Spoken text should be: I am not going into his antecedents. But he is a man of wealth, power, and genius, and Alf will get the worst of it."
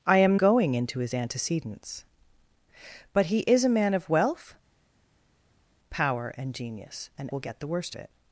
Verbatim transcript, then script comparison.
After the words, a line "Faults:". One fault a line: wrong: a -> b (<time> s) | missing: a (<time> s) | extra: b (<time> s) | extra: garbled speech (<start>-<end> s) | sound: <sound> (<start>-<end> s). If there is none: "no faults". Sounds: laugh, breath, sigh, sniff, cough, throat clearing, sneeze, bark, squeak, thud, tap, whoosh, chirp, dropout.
I am going into his antecedents. But he is a man of wealth, power, and genius, and Will get the worst it."
Faults:
missing: not (0.3 s)
missing: Alf (7.3 s)
missing: of (7.9 s)